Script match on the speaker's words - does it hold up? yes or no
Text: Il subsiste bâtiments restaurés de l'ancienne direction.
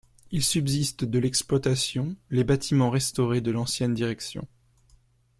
no